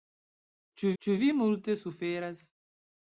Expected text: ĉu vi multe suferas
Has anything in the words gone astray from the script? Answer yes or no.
yes